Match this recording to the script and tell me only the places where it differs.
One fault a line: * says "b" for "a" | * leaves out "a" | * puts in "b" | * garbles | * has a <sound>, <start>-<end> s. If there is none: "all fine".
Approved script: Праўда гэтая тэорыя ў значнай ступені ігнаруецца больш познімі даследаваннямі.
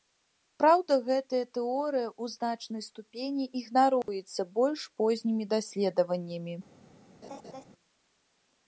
* has a dropout, 4.0-4.1 s
* has a laugh, 7.2-7.6 s